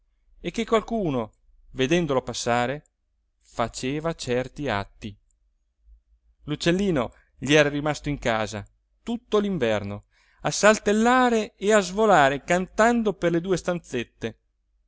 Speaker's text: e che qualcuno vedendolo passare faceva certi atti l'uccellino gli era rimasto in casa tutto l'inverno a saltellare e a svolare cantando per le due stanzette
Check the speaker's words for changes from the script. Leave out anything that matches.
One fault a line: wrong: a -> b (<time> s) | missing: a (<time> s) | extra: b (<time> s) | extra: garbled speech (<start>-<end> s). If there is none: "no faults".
no faults